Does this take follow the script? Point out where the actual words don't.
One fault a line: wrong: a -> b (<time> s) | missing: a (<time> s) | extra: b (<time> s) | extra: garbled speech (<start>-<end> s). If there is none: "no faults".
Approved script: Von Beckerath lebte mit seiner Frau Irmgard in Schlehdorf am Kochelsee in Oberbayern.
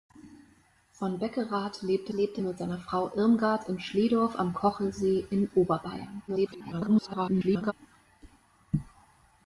extra: lebte (2.1 s)
extra: garbled speech (6.3-7.7 s)